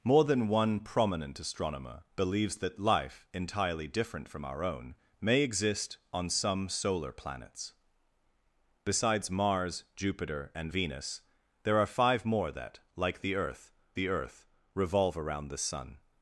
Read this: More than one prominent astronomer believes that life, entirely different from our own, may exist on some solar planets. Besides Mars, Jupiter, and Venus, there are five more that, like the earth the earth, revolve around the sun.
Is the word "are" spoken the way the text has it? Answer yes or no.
yes